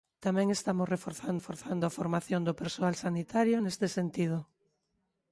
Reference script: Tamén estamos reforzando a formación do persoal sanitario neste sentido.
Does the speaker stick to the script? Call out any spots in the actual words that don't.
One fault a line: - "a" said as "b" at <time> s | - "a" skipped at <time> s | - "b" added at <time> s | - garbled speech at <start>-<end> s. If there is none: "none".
- "reforzando" added at 1.4 s